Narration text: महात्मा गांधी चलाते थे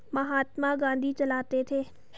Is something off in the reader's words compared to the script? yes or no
no